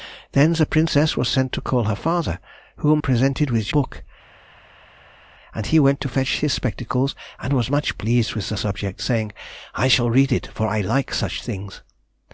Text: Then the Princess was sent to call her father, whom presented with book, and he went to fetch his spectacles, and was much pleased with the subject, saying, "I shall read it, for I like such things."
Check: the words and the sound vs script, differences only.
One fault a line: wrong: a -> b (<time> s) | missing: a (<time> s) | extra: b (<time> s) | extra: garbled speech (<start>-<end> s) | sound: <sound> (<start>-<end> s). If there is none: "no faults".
no faults